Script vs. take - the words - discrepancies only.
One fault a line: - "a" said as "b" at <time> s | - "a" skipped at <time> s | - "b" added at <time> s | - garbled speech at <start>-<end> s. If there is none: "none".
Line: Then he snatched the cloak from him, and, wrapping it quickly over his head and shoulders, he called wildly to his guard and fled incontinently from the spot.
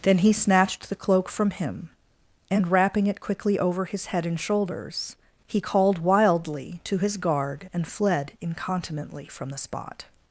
none